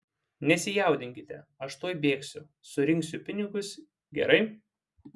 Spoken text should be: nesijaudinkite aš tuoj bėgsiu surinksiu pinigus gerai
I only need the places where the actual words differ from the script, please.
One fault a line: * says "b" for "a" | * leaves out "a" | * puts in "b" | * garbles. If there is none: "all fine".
all fine